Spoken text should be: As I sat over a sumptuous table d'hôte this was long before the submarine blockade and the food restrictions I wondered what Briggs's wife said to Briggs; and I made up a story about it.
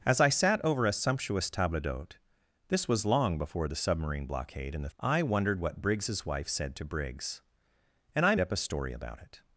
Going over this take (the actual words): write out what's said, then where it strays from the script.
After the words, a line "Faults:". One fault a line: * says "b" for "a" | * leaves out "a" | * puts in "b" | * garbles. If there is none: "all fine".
As I sat over a sumptuous table d'hôte this was long before the submarine blockade and the I wondered what Briggs's wife said to Briggs; and I up a story about it.
Faults:
* leaves out "food restrictions"
* leaves out "made"